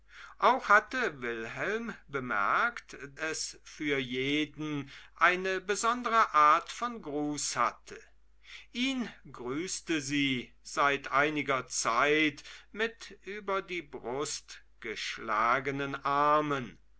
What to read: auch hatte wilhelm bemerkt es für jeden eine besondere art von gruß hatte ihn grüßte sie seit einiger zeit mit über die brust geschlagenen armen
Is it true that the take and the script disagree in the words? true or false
false